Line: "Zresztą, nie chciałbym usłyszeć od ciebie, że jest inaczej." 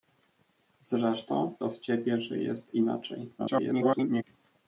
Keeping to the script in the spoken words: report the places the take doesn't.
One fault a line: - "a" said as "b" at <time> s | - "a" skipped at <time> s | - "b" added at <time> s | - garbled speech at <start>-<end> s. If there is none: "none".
- "nie chciałbym usłyszeć" skipped at 1.5 s
- garbled speech at 3.4-4.2 s